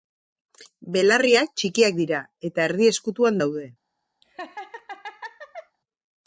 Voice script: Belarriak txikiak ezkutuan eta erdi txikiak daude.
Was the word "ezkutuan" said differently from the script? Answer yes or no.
yes